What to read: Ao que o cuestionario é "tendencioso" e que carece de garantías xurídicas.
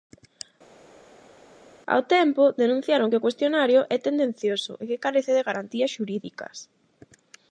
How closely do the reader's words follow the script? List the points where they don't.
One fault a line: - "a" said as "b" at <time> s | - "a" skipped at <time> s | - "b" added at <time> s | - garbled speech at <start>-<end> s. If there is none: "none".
- "tempo denunciaron" added at 2.1 s